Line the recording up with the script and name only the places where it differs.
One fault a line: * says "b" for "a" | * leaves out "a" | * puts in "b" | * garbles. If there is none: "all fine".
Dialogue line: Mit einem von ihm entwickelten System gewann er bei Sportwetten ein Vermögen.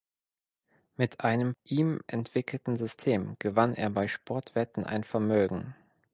* leaves out "von"